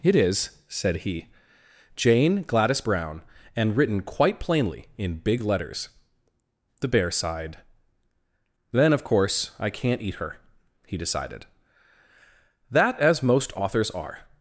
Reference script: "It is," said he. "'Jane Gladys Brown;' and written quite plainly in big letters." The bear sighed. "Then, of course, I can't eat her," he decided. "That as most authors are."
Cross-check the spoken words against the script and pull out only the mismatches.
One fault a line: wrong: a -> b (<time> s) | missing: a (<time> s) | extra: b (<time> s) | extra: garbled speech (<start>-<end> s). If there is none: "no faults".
no faults